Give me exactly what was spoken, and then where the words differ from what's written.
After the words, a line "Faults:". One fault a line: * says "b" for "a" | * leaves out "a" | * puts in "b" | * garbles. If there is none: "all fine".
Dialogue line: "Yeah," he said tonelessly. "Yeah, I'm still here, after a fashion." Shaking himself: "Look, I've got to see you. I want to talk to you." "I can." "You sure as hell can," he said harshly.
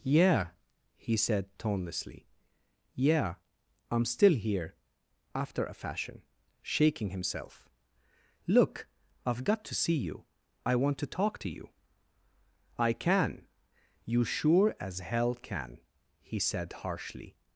"Yeah," he said tonelessly. "Yeah, I'm still here, after a fashion." Shaking himself: "Look, I've got to see you. I want to talk to you." "I can." "You sure as hell can," he said harshly.
Faults:
all fine